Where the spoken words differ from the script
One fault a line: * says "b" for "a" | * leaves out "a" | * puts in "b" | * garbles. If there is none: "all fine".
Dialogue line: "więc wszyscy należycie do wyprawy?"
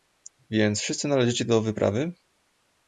all fine